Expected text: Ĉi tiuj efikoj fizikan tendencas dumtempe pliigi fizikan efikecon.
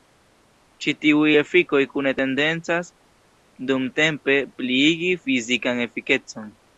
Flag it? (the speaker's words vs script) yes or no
yes